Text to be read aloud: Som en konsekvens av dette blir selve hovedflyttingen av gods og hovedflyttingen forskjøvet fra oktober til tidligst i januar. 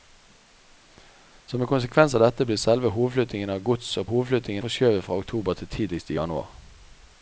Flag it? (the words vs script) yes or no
no